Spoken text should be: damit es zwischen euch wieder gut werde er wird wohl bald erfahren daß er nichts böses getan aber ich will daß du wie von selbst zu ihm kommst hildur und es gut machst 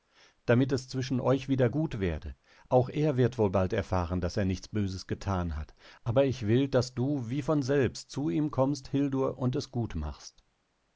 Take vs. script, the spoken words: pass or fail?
fail